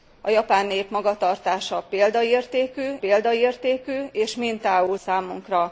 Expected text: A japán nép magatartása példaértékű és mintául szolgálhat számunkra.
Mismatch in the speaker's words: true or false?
true